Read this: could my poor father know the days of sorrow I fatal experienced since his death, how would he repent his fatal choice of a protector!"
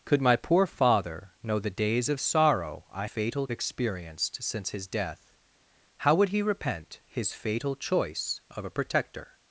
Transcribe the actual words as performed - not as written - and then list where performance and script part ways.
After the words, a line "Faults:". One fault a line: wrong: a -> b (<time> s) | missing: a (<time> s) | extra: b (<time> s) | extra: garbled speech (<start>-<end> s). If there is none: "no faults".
could my poor father know the days of sorrow I fatal experienced since his death, how would he repent his fatal choice of a protector!"
Faults:
no faults